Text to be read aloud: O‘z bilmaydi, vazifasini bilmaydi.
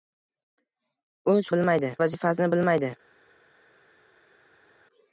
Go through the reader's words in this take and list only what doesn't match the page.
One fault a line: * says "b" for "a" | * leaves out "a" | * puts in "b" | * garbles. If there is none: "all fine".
all fine